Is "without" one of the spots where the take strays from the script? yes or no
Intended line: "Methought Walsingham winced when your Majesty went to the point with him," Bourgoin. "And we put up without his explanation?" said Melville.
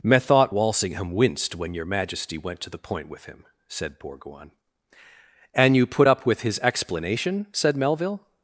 yes